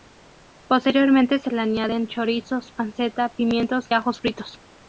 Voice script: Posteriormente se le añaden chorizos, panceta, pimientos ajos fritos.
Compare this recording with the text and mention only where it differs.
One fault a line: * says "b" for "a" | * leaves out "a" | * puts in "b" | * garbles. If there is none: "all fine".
all fine